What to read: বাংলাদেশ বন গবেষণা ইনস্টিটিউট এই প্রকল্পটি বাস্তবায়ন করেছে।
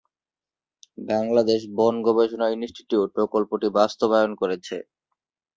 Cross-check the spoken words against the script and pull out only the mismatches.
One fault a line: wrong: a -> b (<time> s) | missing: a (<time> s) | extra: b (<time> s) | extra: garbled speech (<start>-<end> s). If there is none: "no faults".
missing: এই (3.1 s)